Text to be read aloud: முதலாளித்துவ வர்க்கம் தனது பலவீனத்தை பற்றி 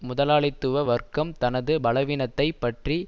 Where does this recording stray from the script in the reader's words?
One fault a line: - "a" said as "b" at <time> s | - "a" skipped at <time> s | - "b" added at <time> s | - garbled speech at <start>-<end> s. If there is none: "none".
none